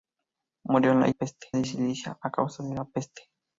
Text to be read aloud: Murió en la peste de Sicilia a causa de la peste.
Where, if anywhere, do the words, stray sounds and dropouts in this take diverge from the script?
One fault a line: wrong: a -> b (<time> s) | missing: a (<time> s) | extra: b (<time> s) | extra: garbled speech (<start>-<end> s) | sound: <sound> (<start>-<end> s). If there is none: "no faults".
no faults